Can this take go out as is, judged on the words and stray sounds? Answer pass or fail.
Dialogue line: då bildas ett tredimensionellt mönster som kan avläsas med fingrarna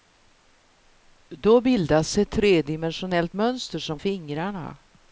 fail